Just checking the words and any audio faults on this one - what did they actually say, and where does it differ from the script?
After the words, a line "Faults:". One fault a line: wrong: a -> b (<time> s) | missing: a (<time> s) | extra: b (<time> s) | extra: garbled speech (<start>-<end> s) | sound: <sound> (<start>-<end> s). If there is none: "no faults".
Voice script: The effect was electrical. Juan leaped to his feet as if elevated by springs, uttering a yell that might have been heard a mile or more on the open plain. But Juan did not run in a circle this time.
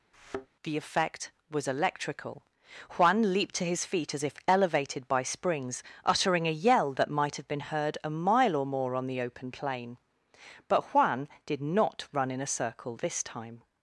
The effect was electrical. Juan leaped to his feet as if elevated by springs, uttering a yell that might have been heard a mile or more on the open plain. But Juan did not run in a circle this time.
Faults:
sound: thud (0.1-0.5 s)